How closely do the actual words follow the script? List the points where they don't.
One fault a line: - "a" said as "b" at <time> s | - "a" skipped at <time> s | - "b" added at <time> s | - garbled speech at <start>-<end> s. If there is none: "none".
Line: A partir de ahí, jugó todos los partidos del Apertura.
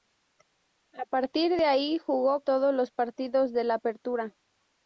none